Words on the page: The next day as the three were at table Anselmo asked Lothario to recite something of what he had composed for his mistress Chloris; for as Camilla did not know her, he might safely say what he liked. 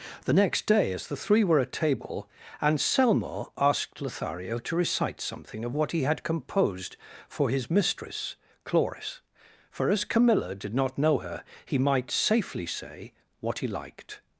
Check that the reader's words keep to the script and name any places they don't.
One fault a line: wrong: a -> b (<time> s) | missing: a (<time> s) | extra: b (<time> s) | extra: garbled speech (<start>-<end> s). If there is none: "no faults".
no faults